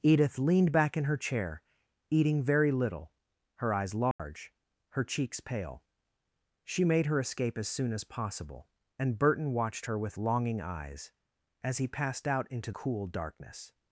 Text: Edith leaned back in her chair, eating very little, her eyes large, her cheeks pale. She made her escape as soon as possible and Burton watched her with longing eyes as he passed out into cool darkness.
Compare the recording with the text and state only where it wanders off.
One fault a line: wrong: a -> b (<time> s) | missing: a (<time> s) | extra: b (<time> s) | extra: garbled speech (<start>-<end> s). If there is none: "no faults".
no faults